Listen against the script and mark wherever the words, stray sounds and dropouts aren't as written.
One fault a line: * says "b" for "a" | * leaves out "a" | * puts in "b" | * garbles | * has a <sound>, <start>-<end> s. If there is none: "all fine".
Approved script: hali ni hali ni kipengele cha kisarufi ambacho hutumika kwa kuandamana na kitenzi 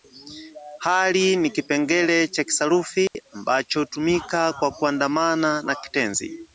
* leaves out "hali ni"
* has a dropout, 3.1-3.1 s